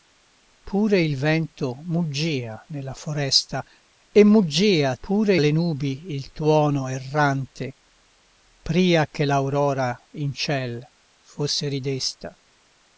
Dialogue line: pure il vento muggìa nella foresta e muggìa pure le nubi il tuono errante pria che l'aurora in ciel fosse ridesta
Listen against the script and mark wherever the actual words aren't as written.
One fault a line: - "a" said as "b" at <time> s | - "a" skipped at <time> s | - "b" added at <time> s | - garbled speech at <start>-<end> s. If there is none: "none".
none